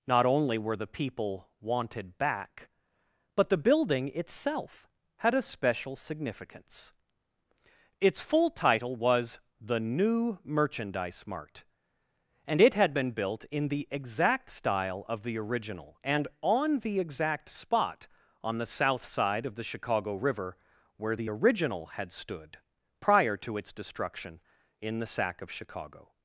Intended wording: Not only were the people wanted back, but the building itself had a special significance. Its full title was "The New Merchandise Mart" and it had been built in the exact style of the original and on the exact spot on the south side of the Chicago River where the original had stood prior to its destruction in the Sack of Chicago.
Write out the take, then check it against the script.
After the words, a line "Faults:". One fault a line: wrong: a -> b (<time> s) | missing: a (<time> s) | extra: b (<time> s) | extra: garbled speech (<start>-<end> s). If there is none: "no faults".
Not only were the people wanted back, but the building itself had a special significance. Its full title was "The New Merchandise Mart" and it had been built in the exact style of the original and on the exact spot on the south side of the Chicago River where the original had stood prior to its destruction in the Sack of Chicago.
Faults:
no faults